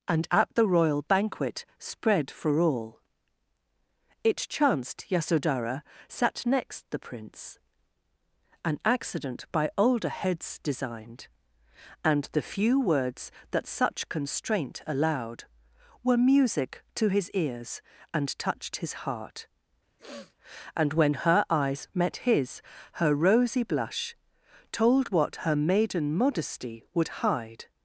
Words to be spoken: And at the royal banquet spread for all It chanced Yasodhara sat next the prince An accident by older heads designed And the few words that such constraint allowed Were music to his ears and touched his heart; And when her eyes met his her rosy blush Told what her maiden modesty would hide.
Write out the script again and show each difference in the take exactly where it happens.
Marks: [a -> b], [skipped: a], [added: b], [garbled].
And at the royal banquet spread for all It chanced Yasodhara sat next the prince An accident by older heads designed And the few words that such constraint allowed Were music to his ears and touched his heart; And when her eyes met his her rosy blush Told what her maiden modesty would hide.